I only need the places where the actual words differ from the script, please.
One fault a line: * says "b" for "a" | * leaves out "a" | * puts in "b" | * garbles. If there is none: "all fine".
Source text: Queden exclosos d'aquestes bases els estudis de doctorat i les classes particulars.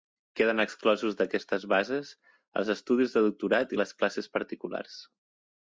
all fine